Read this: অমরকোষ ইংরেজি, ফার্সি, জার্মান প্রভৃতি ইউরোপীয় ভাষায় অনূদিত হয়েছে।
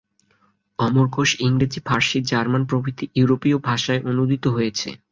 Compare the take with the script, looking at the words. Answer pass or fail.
pass